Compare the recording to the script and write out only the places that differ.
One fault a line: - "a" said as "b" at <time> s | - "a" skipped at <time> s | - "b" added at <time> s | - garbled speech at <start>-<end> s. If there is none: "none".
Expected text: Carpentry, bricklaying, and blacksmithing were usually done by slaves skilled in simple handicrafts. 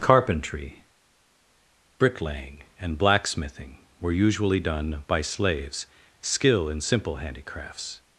- "skilled" said as "skill" at 6.2 s